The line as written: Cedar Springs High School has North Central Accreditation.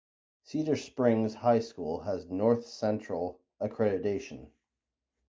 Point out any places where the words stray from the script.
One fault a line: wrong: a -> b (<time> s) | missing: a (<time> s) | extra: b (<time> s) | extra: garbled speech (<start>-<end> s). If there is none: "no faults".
no faults